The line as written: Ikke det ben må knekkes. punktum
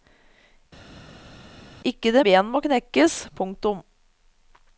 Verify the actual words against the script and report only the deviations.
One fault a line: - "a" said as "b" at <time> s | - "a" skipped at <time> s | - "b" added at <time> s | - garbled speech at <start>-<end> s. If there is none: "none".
none